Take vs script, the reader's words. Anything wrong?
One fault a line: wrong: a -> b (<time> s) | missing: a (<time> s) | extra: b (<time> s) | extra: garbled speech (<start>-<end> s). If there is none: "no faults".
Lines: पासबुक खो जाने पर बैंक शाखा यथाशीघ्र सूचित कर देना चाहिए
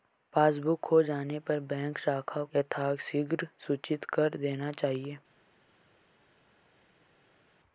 no faults